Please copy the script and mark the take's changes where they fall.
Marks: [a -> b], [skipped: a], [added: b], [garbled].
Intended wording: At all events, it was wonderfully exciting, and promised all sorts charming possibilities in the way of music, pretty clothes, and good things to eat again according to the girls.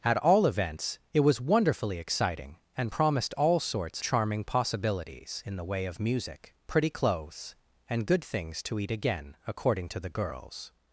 At all events, it was wonderfully exciting, and promised all sorts charming possibilities in the way of music, pretty clothes, and good things to eat again according to the girls.